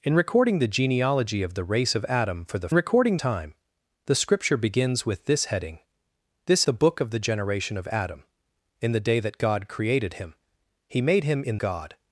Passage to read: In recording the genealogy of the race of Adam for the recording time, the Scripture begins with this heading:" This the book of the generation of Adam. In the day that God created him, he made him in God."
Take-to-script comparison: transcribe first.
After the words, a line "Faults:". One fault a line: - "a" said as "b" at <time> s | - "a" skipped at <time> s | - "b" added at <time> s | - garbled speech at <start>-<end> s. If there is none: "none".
In recording the genealogy of the race of Adam for the recording time, the Scripture begins with this heading:" This the book of the generation of Adam. In the day that God created him, he made him in God."
Faults:
none